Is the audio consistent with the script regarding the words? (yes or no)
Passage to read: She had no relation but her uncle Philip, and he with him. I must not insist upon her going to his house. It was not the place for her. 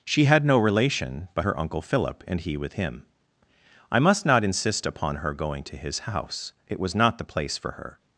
yes